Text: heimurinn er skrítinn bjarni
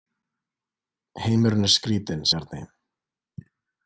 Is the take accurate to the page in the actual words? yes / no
yes